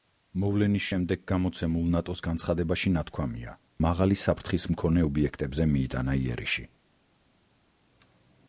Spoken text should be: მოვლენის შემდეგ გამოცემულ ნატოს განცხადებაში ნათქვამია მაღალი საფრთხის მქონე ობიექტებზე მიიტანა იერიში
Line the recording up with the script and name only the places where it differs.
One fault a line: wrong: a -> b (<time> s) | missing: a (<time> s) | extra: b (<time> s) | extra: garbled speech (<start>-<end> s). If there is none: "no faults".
no faults